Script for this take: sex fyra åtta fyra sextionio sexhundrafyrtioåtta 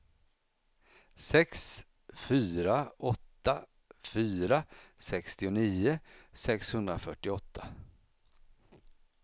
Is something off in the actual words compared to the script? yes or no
no